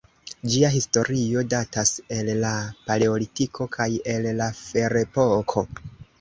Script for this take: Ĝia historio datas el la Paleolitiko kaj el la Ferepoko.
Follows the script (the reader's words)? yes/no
yes